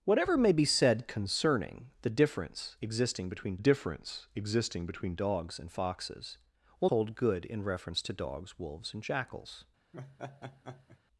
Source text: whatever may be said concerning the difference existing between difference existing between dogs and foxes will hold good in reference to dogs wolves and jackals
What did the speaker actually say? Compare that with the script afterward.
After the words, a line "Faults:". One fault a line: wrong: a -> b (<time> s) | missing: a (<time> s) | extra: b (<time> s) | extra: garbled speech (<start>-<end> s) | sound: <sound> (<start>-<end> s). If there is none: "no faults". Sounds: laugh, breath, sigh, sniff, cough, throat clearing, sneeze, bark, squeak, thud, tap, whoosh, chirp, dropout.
whatever may be said concerning the difference existing between difference existing between dogs and foxes will hold good in reference to dogs wolves and jackals
Faults:
sound: laugh (9.9-11.0 s)